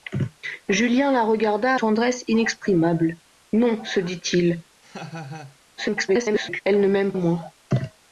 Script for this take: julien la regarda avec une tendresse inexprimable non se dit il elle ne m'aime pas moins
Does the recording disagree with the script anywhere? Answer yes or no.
yes